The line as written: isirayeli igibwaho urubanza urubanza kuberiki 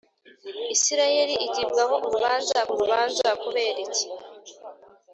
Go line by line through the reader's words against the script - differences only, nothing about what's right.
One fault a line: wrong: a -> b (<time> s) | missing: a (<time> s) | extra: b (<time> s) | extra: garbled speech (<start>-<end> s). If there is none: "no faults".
no faults